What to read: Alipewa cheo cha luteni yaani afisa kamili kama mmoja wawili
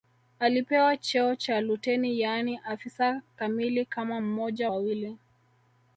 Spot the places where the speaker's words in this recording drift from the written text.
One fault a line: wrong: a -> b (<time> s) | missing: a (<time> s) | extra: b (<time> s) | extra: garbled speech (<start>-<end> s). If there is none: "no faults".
no faults